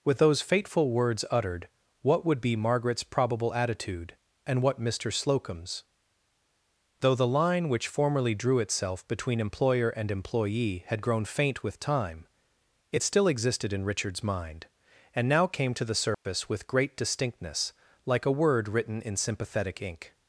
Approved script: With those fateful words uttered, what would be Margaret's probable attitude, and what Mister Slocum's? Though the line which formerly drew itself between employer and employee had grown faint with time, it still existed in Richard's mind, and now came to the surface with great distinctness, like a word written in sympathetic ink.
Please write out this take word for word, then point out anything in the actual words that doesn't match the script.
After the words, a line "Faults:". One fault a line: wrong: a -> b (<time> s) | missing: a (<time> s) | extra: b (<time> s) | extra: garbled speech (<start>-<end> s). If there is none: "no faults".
With those fateful words uttered, what would be Margaret's probable attitude, and what Mister Slocum's? Though the line which formerly drew itself between employer and employee had grown faint with time, it still existed in Richard's mind, and now came to the surface with great distinctness, like a word written in sympathetic ink.
Faults:
no faults